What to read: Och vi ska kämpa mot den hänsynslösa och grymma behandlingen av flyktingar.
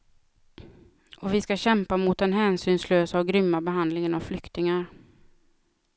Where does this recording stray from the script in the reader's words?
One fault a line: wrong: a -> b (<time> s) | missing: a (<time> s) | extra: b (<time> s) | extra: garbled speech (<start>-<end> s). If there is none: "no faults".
no faults